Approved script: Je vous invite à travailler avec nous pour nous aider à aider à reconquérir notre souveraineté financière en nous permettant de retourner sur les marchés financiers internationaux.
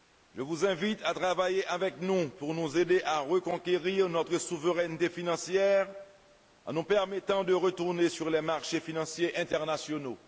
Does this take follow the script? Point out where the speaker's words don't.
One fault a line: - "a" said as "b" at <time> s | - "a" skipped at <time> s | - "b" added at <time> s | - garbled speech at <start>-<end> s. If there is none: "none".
- "aider à" skipped at 3.2 s